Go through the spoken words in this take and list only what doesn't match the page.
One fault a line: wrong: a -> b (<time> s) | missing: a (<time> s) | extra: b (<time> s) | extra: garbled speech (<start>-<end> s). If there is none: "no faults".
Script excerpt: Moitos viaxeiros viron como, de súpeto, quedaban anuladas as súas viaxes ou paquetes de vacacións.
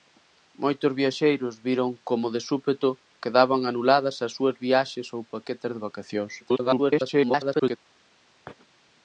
extra: garbled speech (6.4-7.8 s)